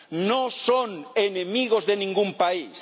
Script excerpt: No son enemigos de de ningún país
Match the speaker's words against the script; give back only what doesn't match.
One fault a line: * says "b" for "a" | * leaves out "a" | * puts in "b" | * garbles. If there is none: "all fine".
* leaves out "de"